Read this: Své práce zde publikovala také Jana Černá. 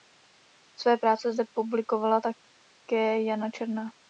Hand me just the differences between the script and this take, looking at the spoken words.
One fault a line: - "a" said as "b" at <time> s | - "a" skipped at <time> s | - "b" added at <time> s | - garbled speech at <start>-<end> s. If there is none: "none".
none